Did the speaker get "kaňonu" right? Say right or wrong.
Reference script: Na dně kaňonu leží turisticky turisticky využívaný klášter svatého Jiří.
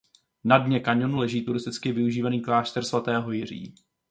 right